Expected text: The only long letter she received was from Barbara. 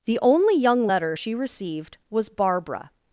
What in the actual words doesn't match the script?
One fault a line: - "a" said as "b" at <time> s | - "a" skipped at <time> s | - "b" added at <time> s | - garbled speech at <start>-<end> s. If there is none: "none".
- "long" said as "young" at 0.6 s
- "from" skipped at 2.3 s